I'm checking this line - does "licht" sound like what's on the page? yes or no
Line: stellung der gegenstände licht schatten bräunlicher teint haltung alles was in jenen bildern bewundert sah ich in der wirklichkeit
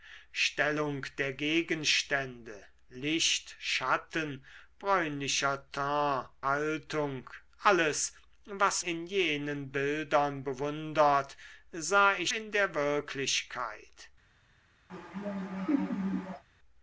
yes